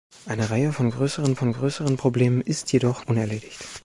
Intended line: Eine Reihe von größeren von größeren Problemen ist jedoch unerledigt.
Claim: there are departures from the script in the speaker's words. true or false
false